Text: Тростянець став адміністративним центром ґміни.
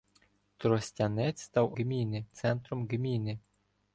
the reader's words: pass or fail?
fail